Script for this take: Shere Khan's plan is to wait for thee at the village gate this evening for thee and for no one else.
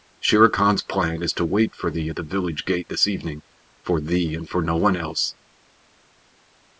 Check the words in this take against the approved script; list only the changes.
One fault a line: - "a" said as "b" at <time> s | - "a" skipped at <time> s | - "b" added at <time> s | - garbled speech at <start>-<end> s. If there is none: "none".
none